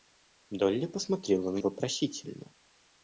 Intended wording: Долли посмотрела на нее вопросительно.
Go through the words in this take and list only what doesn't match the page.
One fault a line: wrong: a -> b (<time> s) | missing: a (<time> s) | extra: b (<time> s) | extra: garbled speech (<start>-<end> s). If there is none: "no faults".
missing: нее (1.6 s)